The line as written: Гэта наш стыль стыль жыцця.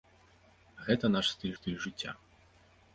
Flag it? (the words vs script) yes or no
no